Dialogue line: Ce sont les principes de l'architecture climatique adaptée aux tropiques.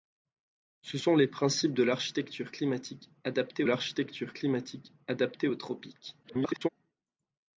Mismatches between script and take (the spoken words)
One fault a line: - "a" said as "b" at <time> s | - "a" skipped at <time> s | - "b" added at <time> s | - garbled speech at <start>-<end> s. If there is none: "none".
- "l'architecture climatique adaptée" added at 3.6 s
- garbled speech at 6.2-6.7 s